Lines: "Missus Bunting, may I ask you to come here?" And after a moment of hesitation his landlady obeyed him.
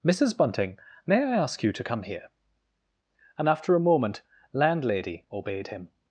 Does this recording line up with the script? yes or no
no